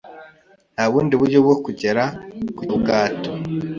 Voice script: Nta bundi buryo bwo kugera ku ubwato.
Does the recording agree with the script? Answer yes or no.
yes